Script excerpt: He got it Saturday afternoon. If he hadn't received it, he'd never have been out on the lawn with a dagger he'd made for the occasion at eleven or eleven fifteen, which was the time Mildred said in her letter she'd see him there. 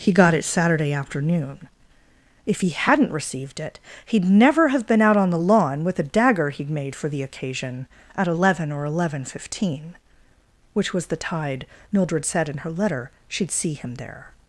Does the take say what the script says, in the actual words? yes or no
no